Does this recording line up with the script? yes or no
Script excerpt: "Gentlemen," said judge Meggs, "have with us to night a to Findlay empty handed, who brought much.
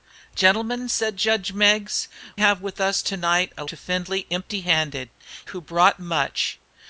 yes